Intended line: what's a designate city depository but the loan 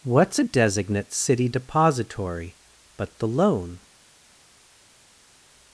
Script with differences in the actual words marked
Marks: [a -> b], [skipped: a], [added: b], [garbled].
what's a designate city depository but the loan